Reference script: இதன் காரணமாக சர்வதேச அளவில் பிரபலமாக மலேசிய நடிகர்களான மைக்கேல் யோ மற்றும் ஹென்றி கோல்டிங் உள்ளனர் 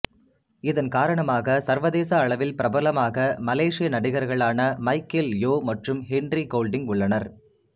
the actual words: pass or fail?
pass